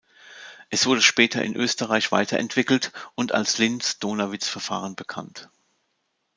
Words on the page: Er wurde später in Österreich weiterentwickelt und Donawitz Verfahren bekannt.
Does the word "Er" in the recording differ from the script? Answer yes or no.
yes